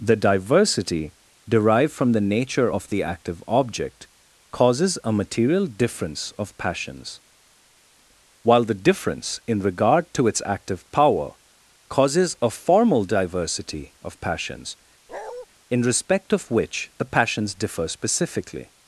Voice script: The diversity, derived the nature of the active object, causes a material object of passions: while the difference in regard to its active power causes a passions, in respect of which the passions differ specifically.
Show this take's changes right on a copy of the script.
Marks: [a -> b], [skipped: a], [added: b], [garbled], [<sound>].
The diversity, derived [added: from] the nature of the active object, causes a material [object -> difference] of passions: while the difference in regard to its active power causes a [added: formal diversity of] passions, [bark] in respect of which the passions differ specifically.